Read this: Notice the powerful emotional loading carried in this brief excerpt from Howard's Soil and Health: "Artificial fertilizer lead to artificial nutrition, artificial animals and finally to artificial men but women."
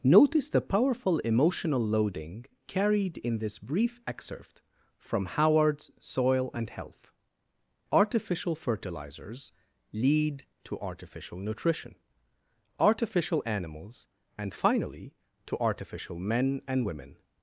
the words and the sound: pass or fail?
fail